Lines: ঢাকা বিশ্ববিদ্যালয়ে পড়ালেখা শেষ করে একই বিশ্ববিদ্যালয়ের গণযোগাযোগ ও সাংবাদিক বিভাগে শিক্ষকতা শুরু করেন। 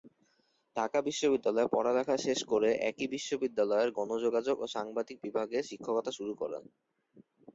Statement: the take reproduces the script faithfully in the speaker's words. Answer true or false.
true